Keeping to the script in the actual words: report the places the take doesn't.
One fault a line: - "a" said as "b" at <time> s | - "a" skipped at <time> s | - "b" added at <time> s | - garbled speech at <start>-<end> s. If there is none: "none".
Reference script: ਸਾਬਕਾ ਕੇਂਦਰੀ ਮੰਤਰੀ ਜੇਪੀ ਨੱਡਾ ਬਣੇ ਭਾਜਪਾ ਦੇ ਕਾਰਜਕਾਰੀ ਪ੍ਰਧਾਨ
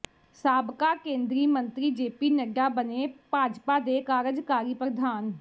none